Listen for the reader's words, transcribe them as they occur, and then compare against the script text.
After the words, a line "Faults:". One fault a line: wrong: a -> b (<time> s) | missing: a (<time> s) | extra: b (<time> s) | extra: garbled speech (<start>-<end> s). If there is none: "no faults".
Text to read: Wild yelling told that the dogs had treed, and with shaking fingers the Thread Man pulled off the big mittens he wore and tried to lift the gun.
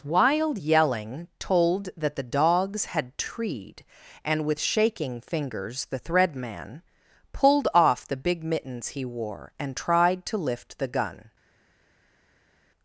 Wild yelling told that the dogs had treed, and with shaking fingers the Thread Man pulled off the big mittens he wore and tried to lift the gun.
Faults:
no faults